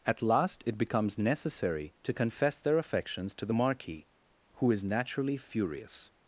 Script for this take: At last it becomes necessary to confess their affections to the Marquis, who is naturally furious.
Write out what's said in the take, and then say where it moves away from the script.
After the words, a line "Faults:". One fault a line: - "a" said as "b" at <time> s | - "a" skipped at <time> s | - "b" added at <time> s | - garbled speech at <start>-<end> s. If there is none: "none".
At last it becomes necessary to confess their affections to the Marquis, who is naturally furious.
Faults:
none